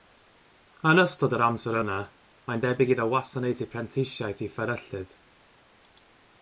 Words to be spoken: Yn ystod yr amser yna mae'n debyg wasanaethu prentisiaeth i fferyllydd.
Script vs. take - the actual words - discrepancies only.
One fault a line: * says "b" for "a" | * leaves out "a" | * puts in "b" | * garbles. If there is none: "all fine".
* puts in "iddo"